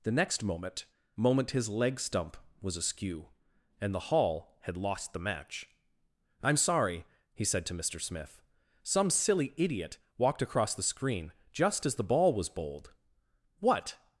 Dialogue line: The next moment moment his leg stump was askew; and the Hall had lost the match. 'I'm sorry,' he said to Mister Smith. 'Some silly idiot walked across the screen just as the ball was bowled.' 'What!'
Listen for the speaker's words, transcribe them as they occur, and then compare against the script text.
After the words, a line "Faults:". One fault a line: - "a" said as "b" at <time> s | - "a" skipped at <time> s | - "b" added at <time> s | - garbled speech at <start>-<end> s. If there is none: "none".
The next moment moment his leg stump was askew; and the Hall had lost the match. 'I'm sorry,' he said to Mister Smith. 'Some silly idiot walked across the screen just as the ball was bowled.' 'What!'
Faults:
none